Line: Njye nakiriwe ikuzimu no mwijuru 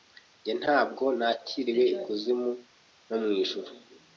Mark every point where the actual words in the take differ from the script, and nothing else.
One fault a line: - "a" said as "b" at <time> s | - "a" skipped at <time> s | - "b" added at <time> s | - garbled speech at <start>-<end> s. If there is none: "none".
- "ntabwo" added at 0.6 s